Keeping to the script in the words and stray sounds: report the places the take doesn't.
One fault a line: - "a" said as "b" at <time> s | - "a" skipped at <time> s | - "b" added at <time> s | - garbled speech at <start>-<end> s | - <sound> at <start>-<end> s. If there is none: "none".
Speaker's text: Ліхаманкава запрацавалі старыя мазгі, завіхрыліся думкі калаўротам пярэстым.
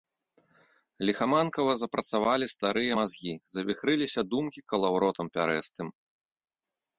none